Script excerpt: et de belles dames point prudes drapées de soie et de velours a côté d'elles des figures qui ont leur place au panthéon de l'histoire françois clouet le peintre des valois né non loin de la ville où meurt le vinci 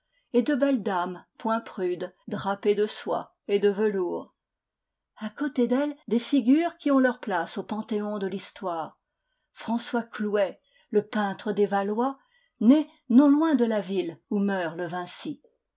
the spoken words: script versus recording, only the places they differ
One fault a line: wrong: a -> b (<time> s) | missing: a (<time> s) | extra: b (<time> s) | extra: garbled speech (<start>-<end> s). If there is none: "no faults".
no faults